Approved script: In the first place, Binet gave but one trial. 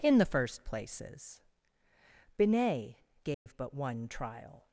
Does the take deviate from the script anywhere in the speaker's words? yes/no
yes